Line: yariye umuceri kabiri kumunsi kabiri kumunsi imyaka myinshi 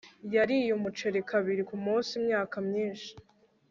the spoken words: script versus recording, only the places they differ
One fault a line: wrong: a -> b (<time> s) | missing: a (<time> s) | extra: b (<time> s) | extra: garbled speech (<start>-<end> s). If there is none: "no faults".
missing: kabiri kumunsi (2.1 s)